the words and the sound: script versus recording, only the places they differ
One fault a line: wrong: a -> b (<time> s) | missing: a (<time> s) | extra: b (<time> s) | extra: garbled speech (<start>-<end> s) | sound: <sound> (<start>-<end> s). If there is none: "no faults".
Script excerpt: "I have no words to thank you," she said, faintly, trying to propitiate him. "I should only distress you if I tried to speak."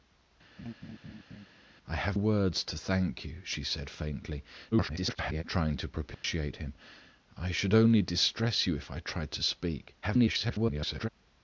sound: laugh (0.6-1.5 s)
missing: no (2.2 s)
extra: garbled speech (4.7-5.4 s)
sound: dropout (6.1-6.2 s)
extra: garbled speech (10.0-11.1 s)